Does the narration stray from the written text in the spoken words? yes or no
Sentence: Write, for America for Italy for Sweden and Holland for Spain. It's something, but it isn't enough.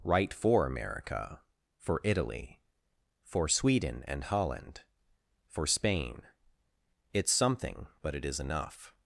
yes